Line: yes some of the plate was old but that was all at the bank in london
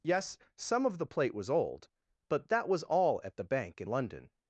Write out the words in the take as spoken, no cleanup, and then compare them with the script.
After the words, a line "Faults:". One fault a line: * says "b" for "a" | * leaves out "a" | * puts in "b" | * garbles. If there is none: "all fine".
yes some of the plate was old but that was all at the bank in london
Faults:
all fine